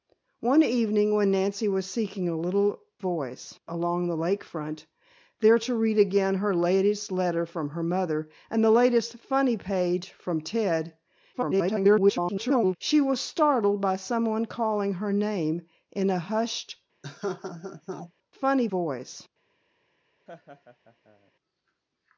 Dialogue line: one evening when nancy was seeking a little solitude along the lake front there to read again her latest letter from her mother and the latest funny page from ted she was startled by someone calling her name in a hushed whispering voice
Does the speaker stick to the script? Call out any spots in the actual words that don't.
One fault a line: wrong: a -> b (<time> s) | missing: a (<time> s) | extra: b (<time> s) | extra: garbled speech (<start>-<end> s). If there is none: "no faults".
wrong: solitude -> voice (3.0 s)
extra: garbled speech (11.3-12.8 s)
wrong: whispering -> funny (18.3 s)